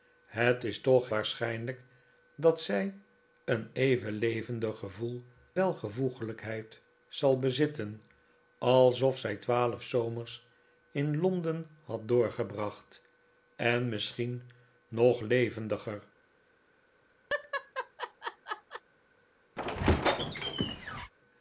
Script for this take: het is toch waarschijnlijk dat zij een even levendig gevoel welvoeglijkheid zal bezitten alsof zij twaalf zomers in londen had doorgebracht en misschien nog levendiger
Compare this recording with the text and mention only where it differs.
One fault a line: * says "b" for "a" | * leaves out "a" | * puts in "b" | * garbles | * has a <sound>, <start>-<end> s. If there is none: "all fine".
* has a laugh, 17.3-18.8 s
* has a squeak, 19.6-21.1 s